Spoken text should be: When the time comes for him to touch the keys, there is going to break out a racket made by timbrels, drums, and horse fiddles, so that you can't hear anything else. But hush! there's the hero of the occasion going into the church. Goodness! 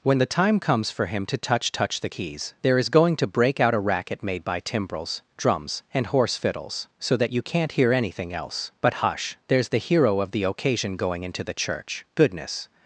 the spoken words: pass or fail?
fail